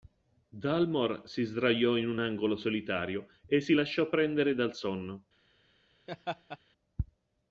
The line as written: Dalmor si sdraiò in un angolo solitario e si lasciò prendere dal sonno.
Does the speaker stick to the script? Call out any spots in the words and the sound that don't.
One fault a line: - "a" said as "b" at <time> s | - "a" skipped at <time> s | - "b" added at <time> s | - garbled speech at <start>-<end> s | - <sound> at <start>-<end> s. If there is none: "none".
- laugh at 6.1-6.6 s